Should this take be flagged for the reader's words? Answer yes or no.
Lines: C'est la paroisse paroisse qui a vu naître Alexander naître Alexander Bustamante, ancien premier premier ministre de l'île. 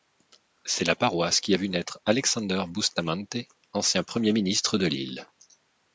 yes